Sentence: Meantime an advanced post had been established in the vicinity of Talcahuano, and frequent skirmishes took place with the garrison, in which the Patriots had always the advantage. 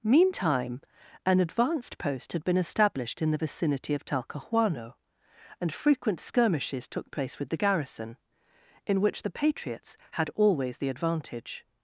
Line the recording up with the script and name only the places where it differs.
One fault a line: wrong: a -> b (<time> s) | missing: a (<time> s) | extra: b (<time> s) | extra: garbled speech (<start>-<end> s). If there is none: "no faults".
no faults